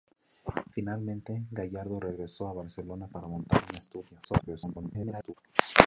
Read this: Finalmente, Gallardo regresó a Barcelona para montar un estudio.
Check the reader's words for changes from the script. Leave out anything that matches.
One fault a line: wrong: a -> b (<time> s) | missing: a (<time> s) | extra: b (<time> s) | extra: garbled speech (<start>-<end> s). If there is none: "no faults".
extra: garbled speech (4.2-5.3 s)